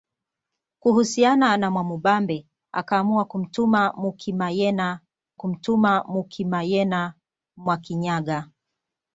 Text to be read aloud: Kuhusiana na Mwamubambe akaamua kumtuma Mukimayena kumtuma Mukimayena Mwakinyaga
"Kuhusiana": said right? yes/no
yes